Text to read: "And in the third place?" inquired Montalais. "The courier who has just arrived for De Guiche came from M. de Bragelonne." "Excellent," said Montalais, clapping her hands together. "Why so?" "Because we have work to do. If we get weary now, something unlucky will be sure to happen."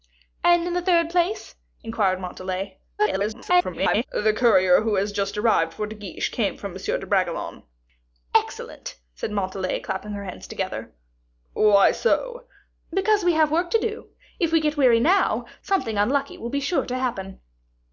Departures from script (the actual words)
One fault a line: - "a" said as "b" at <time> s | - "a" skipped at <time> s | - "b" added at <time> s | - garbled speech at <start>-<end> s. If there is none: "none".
- garbled speech at 3.0-4.1 s